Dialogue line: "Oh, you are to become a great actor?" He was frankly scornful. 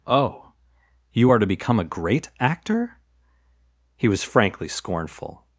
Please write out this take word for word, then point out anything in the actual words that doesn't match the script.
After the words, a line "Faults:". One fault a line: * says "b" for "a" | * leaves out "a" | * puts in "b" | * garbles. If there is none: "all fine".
"Oh, you are to become a great actor?" He was frankly scornful.
Faults:
all fine